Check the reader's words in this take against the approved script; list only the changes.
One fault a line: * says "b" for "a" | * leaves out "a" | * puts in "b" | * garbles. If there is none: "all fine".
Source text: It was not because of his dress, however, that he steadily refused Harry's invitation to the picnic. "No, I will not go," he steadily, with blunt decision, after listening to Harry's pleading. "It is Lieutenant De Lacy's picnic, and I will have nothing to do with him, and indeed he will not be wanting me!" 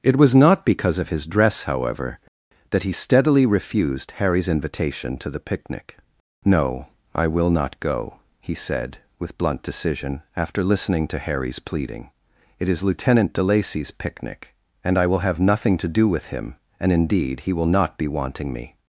* says "said" for "steadily"